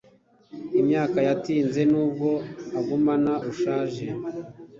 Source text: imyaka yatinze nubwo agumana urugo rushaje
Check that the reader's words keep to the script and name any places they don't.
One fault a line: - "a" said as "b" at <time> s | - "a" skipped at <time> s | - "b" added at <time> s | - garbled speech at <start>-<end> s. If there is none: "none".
- "urugo" skipped at 3.3 s